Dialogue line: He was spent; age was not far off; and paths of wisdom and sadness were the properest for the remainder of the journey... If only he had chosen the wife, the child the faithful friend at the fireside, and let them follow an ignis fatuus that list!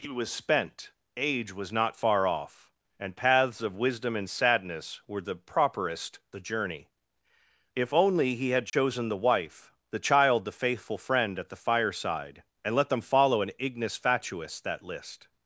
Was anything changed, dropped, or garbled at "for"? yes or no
yes